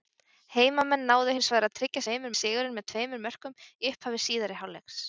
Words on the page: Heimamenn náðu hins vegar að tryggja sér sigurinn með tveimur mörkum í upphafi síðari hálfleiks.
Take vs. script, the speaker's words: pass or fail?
fail